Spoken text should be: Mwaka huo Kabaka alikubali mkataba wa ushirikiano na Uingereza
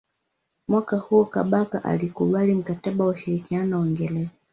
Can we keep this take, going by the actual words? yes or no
yes